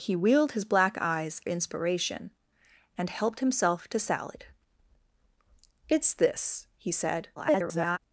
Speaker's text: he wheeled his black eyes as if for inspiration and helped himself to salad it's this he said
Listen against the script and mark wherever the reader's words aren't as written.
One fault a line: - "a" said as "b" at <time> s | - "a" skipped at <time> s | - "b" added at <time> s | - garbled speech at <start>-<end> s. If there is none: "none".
- "as if for" skipped at 1.4 s
- garbled speech at 7.4-8.0 s